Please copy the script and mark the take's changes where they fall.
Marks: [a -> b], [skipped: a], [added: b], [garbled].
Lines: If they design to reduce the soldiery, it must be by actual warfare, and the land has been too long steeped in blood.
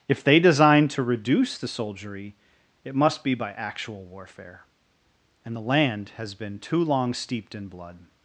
If they design to reduce the soldiery, it must be by actual warfare, and the land has been too long steeped in blood.